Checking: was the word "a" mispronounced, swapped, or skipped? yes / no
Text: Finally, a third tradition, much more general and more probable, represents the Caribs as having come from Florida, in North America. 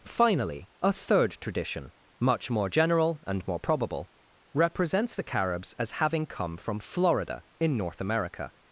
no